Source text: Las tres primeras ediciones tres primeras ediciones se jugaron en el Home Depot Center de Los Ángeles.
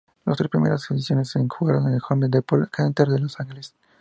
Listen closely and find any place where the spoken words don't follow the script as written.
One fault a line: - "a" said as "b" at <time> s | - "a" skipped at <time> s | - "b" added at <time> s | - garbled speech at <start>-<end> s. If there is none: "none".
- "tres primeras ediciones" skipped at 1.3 s